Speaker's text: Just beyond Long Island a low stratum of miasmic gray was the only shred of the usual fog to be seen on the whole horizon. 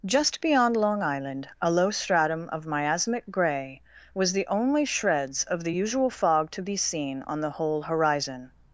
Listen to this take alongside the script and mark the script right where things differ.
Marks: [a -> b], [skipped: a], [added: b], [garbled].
Just beyond Long Island a low stratum of miasmic gray was the only [shred -> shreds] of the usual fog to be seen on the whole horizon.